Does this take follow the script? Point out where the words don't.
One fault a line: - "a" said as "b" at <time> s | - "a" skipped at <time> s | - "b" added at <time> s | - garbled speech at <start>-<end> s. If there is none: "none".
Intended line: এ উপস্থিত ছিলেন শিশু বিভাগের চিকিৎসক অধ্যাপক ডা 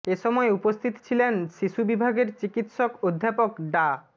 - "সময়" added at 0.2 s